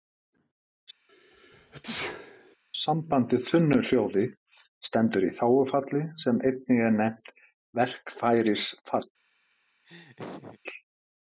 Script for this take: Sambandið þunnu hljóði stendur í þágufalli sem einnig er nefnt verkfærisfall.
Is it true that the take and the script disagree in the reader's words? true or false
false